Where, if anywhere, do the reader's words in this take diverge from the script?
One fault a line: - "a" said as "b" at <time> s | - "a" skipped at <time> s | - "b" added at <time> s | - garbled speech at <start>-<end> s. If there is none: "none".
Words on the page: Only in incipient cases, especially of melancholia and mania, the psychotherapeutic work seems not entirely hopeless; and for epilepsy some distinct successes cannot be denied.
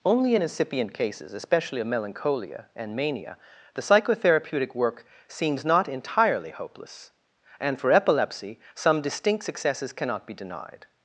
none